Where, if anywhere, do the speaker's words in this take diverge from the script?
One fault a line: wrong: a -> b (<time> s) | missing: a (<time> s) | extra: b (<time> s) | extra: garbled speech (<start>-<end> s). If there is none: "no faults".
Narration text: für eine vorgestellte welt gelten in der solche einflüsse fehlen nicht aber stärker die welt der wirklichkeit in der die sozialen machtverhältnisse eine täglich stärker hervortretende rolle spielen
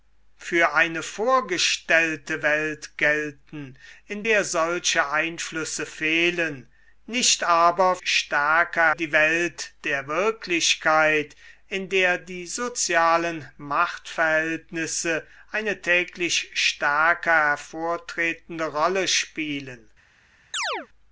no faults